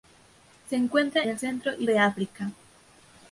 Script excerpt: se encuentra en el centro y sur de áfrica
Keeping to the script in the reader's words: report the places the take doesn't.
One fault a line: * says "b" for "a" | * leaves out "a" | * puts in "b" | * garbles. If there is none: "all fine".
* leaves out "en"
* leaves out "sur"